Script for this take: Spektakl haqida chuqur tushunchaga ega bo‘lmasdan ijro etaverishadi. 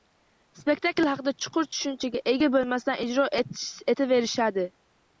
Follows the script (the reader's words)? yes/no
yes